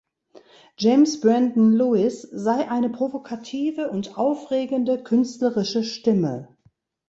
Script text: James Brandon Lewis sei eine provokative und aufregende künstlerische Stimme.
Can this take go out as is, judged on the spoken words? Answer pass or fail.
pass